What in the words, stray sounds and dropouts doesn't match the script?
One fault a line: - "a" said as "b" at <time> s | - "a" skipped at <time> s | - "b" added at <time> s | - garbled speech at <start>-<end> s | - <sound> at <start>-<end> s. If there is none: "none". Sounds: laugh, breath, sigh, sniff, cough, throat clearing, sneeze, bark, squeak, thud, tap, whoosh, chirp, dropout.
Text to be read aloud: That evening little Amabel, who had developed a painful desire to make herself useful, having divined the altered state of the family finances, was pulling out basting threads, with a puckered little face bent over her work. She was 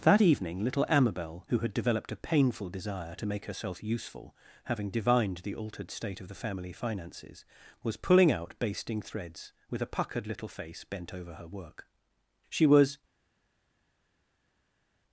none